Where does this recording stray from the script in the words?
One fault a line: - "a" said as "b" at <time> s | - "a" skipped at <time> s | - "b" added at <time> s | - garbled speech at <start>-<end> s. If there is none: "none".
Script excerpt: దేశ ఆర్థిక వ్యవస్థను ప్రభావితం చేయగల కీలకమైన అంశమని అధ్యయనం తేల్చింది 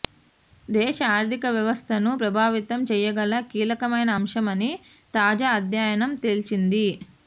- "తాజా" added at 5.1 s